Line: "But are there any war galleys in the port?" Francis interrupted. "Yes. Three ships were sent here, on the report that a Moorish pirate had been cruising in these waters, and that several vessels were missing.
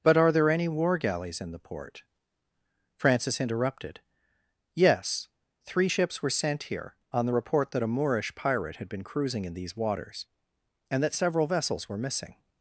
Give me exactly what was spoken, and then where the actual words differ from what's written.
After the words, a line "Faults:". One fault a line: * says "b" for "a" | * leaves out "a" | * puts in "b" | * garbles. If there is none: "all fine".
"But are there any war galleys in the port?" Francis interrupted. "Yes. Three ships were sent here, on the report that a Moorish pirate had been cruising in these waters, and that several vessels were missing.
Faults:
all fine